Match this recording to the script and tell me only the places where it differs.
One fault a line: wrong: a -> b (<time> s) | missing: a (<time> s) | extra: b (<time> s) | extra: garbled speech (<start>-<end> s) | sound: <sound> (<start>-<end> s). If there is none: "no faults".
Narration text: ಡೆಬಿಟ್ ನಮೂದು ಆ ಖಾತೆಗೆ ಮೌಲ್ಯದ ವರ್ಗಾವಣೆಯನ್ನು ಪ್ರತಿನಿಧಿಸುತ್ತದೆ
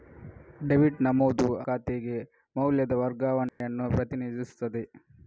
missing: ಆ (1.4 s)
sound: dropout (3.5-3.6 s)